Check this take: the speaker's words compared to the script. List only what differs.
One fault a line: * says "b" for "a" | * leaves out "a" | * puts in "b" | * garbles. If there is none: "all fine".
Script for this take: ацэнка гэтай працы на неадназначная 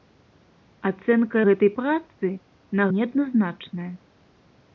all fine